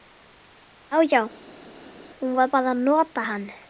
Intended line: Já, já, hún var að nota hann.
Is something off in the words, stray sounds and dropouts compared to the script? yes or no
yes